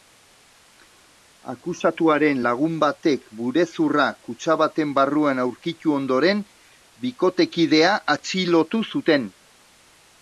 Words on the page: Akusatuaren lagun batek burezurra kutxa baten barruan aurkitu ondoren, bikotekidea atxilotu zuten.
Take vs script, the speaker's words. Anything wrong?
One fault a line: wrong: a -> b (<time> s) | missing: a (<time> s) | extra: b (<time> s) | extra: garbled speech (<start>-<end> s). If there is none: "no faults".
no faults